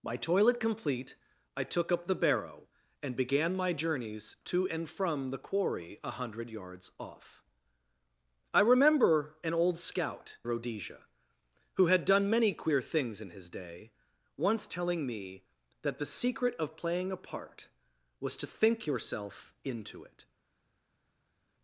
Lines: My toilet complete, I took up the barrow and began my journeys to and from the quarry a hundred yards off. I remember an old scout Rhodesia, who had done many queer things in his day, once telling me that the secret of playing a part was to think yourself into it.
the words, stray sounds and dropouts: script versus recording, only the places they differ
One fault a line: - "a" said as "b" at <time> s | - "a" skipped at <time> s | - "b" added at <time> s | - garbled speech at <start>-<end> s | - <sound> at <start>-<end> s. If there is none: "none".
none